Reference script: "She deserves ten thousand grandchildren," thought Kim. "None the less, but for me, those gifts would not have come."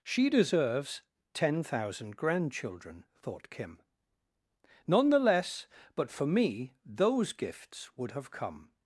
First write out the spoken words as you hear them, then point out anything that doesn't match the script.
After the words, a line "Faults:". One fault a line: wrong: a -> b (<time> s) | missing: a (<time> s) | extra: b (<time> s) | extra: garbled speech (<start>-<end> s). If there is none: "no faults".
"She deserves ten thousand grandchildren," thought Kim. "None the less, but for me, those gifts would have come."
Faults:
missing: not (8.1 s)